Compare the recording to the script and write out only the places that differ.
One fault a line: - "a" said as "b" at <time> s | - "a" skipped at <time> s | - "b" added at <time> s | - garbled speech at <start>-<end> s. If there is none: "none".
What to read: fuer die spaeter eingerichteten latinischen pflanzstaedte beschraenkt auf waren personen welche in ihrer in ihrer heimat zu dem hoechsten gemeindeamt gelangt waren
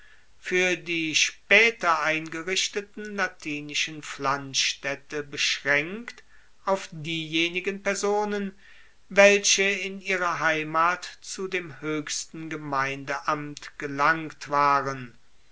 - "waren" said as "diejenigen" at 6.9 s
- "in ihrer" skipped at 10.4 s